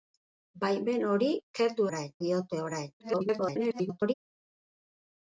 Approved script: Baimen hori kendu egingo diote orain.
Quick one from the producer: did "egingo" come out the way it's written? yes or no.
no